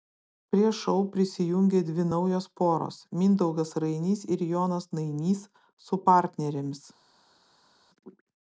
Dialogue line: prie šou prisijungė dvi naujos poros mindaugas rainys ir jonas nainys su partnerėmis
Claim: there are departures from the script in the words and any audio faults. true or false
false